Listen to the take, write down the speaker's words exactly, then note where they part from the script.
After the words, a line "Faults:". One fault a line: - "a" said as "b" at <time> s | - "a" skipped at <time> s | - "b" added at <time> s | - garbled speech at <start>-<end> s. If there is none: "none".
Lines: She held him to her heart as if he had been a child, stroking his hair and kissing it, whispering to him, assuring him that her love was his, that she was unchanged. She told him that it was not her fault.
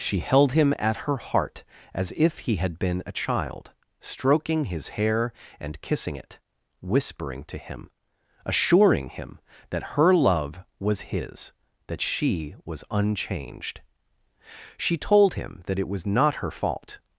She held him at her heart as if he had been a child, stroking his hair and kissing it, whispering to him, assuring him that her love was his, that she was unchanged. She told him that it was not her fault.
Faults:
- "to" said as "at" at 0.8 s